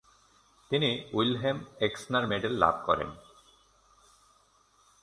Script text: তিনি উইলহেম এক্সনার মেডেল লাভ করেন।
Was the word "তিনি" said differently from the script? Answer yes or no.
no